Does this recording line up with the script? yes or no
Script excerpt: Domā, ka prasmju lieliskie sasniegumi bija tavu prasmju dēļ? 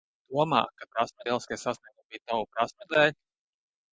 yes